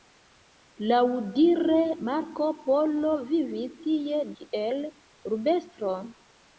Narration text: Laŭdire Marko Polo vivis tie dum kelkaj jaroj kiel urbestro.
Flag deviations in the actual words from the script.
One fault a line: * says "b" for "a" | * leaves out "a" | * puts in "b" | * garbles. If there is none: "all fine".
* leaves out "dum kelkaj jaroj"